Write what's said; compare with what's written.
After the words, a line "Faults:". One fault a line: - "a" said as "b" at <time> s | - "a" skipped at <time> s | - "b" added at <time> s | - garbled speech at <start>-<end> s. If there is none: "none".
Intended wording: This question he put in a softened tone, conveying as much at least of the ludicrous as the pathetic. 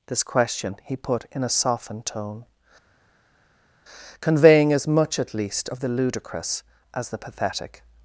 This question he put in a softened tone, conveying as much at least of the ludicrous as the pathetic.
Faults:
none